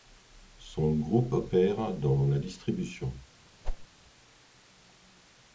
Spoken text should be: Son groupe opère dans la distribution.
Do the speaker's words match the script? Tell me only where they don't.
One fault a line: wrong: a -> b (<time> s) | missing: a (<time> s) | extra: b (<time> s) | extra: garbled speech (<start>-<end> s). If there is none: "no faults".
no faults